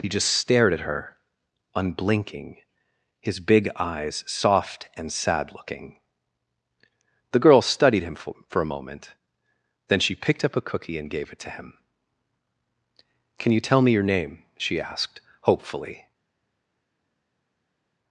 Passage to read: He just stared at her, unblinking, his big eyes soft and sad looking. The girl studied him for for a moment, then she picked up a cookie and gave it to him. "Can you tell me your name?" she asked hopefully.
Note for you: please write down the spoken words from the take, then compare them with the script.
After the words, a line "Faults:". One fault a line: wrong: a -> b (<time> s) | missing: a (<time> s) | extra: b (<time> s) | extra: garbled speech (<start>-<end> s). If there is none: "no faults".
He just stared at her, unblinking, his big eyes soft and sad looking. The girl studied him for for a moment, then she picked up a cookie and gave it to him. "Can you tell me your name?" she asked hopefully.
Faults:
no faults